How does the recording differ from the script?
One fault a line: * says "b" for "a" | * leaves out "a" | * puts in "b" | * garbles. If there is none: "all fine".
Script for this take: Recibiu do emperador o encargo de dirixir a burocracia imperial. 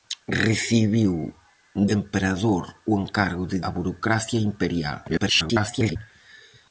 * leaves out "do"
* leaves out "dirixir"
* garbles